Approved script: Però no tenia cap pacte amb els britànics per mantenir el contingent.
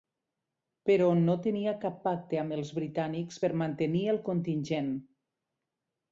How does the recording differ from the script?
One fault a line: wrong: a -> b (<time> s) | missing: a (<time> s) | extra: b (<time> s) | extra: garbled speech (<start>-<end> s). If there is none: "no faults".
no faults